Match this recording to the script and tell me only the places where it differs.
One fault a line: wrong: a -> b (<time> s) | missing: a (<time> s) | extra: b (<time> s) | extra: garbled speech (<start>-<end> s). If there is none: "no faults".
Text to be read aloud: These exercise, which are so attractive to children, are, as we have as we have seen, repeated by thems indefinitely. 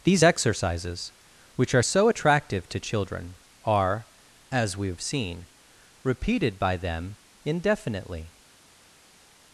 wrong: exercise -> exercises (0.2 s)
missing: as we have (5.0 s)
wrong: thems -> them (6.8 s)